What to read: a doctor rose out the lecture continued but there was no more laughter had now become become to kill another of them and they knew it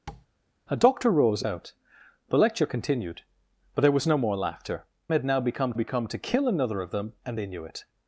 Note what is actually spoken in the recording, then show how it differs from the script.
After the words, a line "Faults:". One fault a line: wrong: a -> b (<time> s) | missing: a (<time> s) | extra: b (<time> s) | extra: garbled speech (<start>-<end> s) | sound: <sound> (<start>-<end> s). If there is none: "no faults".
a doctor rose out the lecture continued but there was no more laughter had now become become to kill another of them and they knew it
Faults:
sound: tap (0.1-0.3 s)